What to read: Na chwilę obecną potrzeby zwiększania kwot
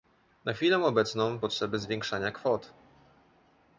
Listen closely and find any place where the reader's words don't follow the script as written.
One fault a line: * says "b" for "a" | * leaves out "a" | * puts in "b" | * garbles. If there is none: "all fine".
all fine